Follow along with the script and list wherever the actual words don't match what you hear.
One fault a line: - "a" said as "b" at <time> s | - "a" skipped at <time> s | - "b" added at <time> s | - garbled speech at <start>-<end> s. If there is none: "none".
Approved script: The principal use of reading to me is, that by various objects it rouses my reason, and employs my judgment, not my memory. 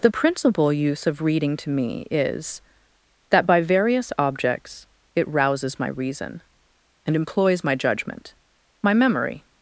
- "not" skipped at 8.4 s